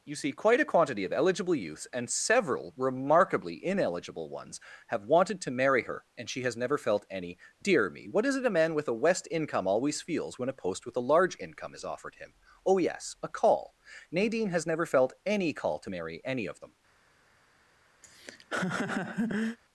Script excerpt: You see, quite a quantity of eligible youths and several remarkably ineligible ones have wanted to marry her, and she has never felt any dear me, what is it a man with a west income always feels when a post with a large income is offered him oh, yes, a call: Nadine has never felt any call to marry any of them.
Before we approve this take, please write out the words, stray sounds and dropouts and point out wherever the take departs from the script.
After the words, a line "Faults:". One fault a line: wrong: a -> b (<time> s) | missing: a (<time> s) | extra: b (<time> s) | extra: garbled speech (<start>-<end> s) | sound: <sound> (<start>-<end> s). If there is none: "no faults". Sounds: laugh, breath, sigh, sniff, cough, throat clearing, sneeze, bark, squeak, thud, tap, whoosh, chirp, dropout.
You see, quite a quantity of eligible youths and several remarkably ineligible ones have wanted to marry her, and she has never felt any dear me, what is it a man with a west income always feels when a post with a large income is offered him oh, yes, a call: Nadine has never felt any call to marry any of them.
Faults:
sound: laugh (18.0-19.6 s)